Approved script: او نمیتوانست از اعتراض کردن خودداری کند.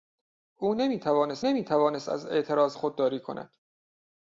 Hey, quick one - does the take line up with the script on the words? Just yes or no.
no